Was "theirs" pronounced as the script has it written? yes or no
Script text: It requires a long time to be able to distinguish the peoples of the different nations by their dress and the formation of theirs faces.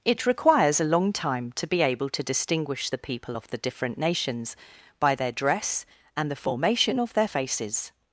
no